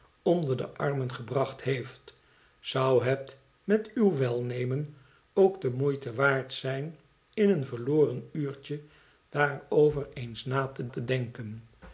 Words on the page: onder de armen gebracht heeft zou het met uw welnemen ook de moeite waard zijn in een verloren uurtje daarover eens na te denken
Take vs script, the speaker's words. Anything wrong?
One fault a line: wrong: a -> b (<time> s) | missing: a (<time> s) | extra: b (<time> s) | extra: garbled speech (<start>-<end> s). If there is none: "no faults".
extra: te (10.8 s)